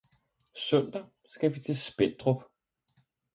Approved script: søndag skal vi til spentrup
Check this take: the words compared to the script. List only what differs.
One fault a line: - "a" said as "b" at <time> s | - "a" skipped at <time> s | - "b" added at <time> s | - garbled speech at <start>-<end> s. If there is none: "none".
none